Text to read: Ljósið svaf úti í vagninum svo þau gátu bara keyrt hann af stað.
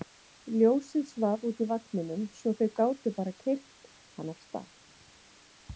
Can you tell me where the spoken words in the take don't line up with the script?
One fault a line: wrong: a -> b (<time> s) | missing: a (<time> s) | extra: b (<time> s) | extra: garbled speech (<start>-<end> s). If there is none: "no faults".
no faults